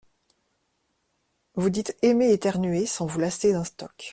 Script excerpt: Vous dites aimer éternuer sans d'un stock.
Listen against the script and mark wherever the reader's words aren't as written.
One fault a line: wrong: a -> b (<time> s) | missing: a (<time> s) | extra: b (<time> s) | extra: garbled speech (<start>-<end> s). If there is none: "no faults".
extra: vous lasser (3.0 s)